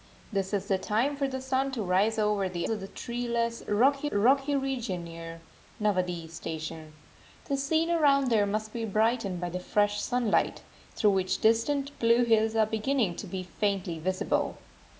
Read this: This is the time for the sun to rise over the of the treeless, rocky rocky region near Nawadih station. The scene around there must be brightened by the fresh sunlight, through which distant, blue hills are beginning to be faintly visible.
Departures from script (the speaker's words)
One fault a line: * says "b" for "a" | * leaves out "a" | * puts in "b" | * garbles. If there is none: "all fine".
all fine